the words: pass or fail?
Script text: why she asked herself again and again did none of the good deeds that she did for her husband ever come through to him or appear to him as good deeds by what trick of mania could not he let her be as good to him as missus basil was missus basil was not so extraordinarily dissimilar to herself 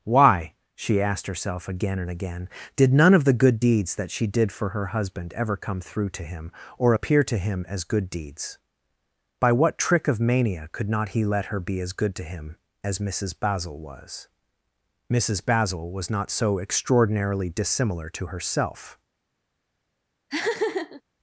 pass